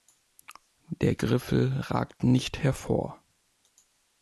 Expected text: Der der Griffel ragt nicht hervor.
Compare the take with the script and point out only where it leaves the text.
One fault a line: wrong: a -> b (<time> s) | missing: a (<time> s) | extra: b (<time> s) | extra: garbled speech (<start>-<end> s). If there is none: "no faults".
missing: der (1.1 s)